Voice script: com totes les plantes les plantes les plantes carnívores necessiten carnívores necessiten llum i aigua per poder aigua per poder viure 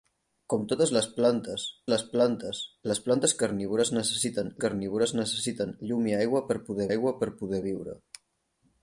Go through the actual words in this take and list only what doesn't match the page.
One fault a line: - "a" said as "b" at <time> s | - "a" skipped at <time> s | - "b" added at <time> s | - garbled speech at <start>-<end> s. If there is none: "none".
none